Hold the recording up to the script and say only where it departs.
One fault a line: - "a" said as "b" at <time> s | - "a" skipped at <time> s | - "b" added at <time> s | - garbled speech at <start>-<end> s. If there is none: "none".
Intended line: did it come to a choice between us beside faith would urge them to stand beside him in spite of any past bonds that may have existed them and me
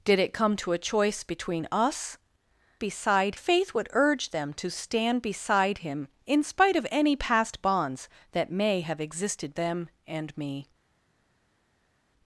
none